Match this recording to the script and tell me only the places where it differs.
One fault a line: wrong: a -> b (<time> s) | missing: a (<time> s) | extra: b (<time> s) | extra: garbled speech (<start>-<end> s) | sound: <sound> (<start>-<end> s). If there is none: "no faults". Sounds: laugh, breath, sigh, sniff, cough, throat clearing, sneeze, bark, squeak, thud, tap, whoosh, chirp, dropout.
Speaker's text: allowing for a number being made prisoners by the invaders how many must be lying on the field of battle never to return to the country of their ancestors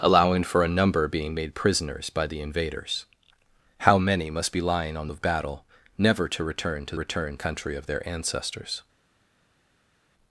missing: the field (5.1 s)
wrong: the -> return (7.0 s)